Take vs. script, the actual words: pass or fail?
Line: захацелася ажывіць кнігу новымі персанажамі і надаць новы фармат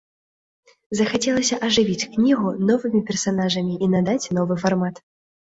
pass